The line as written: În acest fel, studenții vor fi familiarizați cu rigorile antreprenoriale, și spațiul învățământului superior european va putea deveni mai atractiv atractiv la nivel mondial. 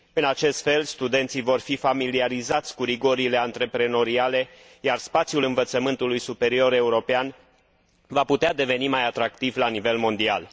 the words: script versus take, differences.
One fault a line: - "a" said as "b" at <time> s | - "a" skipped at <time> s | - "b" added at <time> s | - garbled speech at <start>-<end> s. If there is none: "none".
- "și" said as "iar" at 4.8 s
- "atractiv" skipped at 9.6 s